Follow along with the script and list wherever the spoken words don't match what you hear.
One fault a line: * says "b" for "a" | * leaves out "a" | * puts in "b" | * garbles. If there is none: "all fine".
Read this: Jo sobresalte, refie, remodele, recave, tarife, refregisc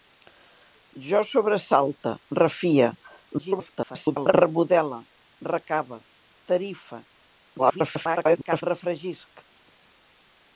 * garbles
* garbles